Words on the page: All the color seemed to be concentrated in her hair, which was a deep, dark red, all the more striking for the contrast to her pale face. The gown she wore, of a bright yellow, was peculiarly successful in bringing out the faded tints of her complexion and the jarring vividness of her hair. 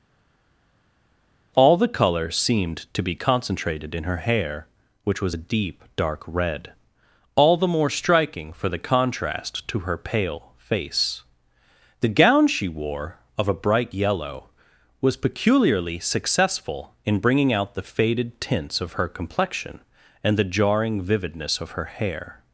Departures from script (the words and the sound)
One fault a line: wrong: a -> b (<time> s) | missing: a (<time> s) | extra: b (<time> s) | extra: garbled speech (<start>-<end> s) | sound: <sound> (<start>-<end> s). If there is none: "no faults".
no faults